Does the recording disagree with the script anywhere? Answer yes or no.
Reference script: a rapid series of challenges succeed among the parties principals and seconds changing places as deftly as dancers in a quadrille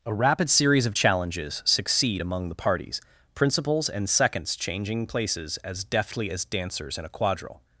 no